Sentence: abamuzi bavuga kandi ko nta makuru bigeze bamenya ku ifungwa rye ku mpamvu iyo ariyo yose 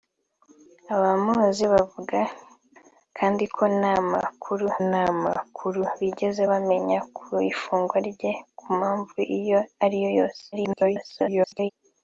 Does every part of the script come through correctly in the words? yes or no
no